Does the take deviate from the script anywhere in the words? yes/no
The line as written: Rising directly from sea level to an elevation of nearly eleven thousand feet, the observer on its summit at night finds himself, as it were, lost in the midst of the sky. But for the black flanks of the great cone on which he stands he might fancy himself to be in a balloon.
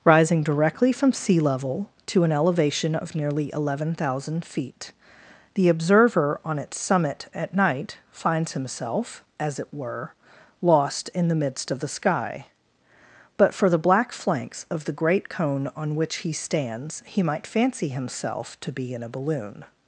no